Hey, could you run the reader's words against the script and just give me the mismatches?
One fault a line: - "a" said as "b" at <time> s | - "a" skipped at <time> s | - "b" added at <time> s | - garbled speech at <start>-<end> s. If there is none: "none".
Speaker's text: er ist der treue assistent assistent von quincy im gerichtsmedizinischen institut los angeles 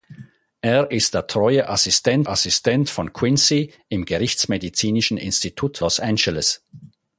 none